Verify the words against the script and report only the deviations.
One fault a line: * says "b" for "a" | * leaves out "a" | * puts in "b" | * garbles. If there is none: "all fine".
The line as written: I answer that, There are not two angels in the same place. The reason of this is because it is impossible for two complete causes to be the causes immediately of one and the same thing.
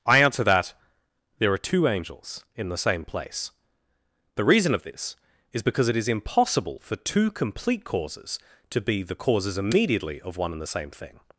* leaves out "not"